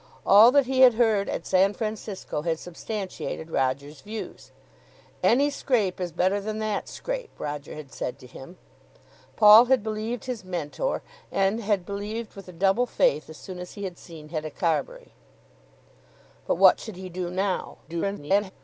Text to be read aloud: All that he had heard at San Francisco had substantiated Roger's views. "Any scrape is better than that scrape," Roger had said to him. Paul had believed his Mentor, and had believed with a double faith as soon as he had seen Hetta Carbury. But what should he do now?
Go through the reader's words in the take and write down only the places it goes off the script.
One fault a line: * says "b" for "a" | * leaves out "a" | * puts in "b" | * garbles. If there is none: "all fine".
* garbles